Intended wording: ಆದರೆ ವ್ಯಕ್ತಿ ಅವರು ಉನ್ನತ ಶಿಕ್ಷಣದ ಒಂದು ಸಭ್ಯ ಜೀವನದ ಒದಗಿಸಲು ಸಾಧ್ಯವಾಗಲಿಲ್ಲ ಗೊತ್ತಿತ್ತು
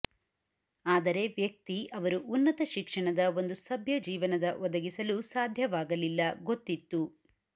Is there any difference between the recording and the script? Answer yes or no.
no